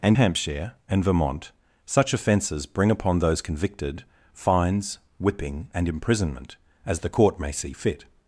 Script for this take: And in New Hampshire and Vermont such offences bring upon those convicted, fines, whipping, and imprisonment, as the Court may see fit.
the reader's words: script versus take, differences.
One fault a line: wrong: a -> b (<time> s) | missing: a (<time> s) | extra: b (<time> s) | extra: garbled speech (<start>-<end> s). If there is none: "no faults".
missing: in New (0.2 s)